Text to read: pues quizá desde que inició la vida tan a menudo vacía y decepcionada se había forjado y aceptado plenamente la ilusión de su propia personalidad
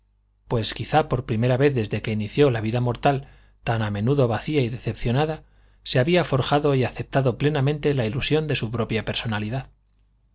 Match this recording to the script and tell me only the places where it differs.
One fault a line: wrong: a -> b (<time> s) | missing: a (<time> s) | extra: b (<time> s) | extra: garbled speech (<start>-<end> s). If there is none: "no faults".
extra: por primera vez (1.1 s)
extra: mortal (2.8 s)